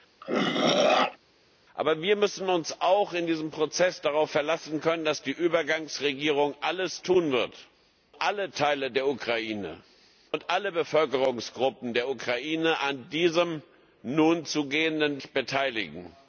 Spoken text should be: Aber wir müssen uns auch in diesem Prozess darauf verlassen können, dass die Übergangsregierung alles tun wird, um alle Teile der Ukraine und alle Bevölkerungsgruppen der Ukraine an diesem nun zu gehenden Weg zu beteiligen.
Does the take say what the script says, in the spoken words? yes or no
no